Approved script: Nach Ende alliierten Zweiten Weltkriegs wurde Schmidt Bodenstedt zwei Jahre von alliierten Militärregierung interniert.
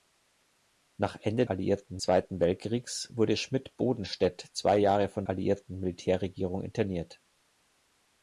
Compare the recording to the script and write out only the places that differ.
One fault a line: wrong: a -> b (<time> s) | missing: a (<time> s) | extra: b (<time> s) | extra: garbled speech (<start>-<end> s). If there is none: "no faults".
no faults